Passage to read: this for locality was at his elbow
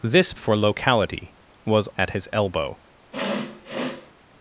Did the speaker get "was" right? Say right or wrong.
right